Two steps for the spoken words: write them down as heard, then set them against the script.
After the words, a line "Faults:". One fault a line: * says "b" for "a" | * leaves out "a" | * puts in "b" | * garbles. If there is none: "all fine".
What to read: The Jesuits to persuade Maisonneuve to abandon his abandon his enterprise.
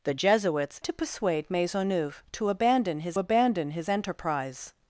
The Jesuits to persuade Maisonneuve to abandon his abandon his enterprise.
Faults:
all fine